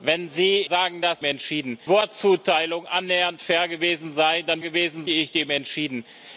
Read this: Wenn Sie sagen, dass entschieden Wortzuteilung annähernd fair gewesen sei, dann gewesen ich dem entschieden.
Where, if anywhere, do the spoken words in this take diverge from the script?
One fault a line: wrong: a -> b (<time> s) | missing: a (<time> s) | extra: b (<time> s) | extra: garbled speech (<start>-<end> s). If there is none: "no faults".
no faults